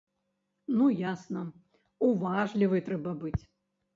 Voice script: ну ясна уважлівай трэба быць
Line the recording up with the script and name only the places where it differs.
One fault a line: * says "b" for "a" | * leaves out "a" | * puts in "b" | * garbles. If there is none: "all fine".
all fine